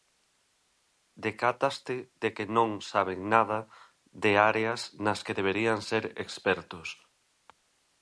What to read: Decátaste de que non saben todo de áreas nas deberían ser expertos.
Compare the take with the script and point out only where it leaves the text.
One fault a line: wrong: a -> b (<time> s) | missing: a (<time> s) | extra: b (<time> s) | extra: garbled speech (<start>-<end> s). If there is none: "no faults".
wrong: todo -> nada (3.3 s)
extra: que (5.3 s)